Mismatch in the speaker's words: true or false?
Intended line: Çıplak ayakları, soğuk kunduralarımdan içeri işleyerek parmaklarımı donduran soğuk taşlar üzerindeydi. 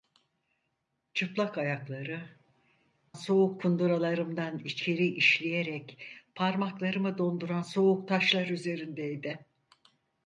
false